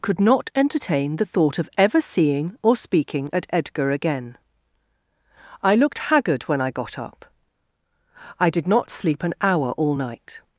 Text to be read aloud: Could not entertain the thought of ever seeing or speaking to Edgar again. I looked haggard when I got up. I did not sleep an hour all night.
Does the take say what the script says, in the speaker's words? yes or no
no